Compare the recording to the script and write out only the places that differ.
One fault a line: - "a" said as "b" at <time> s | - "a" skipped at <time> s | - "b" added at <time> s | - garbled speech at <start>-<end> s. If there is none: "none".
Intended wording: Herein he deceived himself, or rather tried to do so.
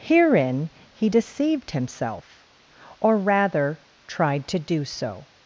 none